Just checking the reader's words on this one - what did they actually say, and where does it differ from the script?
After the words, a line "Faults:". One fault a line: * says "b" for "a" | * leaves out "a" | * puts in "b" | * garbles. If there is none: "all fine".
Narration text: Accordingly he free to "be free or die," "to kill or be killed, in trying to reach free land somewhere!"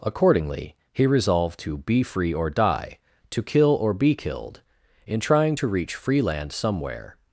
Accordingly he resolved to "be free or die," "to kill or be killed, in trying to reach free land somewhere!"
Faults:
* says "resolved" for "free"